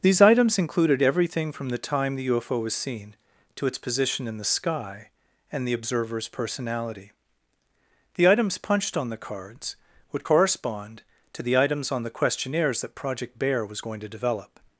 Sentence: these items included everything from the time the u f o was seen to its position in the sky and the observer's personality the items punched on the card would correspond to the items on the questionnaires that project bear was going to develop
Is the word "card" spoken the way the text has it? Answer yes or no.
no